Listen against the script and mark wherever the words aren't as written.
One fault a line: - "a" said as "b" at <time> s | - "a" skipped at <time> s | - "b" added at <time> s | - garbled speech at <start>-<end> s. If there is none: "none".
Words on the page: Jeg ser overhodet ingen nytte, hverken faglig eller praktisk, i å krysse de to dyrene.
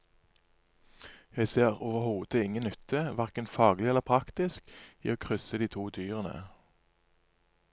none